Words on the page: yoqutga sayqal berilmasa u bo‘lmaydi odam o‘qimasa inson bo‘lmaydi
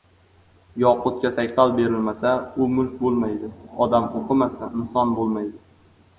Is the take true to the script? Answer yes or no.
no